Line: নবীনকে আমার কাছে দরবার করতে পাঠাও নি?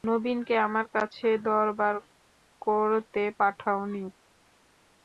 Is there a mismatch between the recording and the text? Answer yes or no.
no